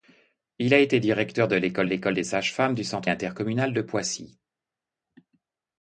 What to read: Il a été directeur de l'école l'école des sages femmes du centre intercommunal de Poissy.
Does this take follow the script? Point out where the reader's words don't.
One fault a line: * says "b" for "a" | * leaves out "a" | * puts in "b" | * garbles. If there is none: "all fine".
all fine